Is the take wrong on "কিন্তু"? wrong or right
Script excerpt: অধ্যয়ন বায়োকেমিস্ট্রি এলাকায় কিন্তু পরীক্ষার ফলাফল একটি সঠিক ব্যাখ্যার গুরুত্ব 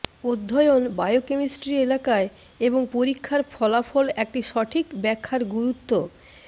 wrong